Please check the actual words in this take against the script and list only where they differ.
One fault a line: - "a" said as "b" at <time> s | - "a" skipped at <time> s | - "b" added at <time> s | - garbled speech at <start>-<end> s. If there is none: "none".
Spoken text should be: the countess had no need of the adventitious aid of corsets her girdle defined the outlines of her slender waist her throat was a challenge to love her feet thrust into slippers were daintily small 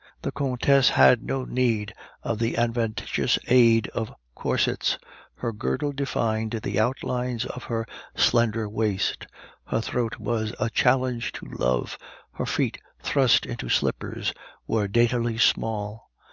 none